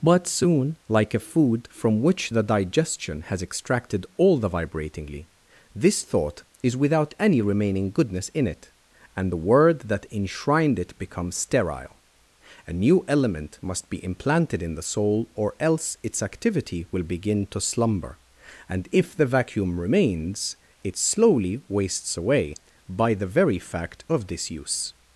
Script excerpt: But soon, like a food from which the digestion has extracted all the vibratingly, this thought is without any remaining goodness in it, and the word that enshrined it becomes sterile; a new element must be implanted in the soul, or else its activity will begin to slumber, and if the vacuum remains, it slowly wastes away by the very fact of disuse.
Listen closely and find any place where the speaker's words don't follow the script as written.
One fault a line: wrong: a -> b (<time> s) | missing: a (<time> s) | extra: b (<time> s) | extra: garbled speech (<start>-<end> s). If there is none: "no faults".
no faults